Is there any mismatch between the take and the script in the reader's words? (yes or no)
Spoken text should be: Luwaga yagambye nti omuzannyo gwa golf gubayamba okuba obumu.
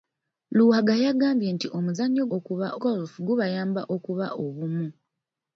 yes